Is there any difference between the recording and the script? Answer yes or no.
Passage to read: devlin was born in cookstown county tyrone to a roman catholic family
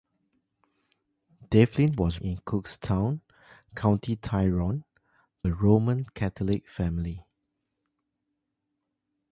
yes